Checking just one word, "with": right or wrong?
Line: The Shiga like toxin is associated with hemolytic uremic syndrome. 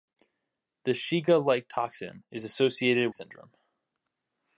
wrong